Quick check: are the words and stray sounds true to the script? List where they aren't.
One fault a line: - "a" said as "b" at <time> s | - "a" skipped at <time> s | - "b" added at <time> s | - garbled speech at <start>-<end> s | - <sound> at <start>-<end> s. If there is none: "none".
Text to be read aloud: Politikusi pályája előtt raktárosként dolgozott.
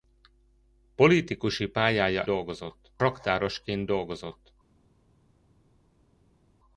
- "előtt" said as "dolgozott" at 2.2 s